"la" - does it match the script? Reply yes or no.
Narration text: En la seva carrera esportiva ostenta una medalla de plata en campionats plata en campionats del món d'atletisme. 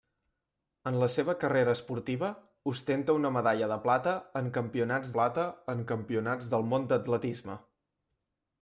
yes